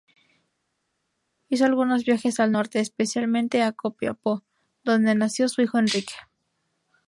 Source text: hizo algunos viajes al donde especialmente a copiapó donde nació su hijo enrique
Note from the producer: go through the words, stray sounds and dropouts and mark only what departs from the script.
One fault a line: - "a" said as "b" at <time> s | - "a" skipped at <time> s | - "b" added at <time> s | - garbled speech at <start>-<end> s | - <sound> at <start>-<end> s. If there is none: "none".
- "donde" said as "norte" at 2.5 s